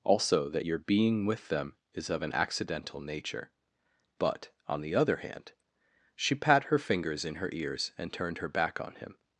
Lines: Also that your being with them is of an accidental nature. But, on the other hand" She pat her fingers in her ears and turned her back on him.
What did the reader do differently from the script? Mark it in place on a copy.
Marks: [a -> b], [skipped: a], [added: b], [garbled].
Also that your being with them is of an accidental nature. But, on the other hand" She pat her fingers in her ears and turned her back on him.